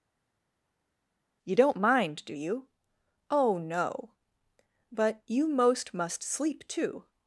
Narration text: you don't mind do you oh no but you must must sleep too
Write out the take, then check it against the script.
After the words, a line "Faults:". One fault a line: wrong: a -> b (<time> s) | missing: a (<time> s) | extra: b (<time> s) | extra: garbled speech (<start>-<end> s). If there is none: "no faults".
you don't mind do you oh no but you most must sleep too
Faults:
wrong: must -> most (5.5 s)